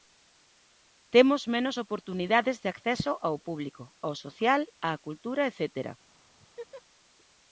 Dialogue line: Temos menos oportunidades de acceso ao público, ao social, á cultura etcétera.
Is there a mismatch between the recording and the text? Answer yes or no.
no